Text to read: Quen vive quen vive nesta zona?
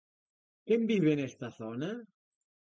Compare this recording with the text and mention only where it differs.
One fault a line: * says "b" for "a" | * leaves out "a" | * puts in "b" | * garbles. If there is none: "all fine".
* leaves out "quen vive"